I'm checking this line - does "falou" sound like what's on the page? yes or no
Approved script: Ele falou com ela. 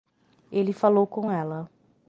yes